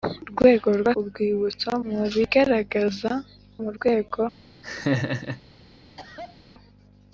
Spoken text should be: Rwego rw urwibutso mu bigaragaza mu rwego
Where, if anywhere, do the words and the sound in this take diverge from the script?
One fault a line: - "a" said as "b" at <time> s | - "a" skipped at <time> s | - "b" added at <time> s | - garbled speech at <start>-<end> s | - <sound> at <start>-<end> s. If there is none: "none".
- laugh at 4.6-5.4 s
- cough at 6.0-6.4 s